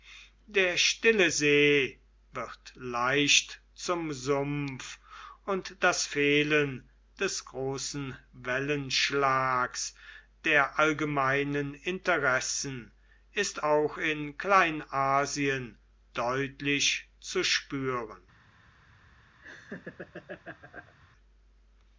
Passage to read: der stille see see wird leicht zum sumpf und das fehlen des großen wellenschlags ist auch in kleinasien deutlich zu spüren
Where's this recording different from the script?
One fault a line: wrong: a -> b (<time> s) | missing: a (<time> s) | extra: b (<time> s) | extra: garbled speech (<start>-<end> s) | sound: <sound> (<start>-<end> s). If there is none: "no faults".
missing: see (2.0 s)
extra: der allgemeinen interessen (10.4 s)
sound: laugh (19.4-20.9 s)